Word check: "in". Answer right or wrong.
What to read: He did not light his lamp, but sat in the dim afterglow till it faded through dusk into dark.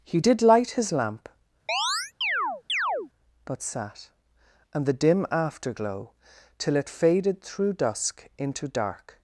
wrong